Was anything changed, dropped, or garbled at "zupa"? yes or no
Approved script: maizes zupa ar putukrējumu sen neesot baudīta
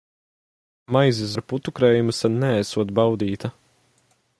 yes